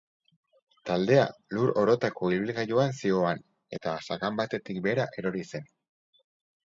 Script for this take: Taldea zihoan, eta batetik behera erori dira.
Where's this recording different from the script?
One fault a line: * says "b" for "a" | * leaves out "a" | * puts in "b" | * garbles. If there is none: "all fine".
* puts in "lur orotako ibilgailuan"
* puts in "sakan"
* says "zen" for "dira"